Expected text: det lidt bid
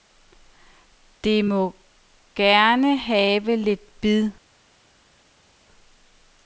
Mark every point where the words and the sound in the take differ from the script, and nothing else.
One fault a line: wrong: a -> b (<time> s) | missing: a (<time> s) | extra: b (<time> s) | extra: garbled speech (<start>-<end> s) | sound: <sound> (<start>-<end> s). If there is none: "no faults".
extra: må gerne have (1.4 s)